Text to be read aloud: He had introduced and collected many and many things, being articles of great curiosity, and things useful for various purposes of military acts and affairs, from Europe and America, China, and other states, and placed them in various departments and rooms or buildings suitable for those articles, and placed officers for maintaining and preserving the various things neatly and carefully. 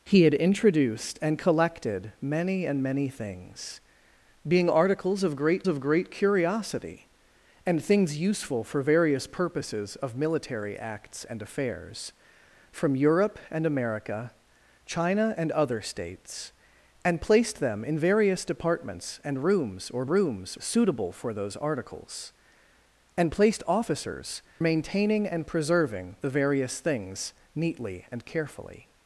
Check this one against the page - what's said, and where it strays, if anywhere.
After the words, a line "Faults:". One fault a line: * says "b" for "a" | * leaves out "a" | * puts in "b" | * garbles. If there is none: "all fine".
He had introduced and collected many and many things, being articles of great of great curiosity, and things useful for various purposes of military acts and affairs, from Europe and America, China, and other states, and placed them in various departments and rooms or rooms suitable for those articles, and placed officers maintaining and preserving the various things neatly and carefully.
Faults:
* puts in "of great"
* says "rooms" for "buildings"
* leaves out "for"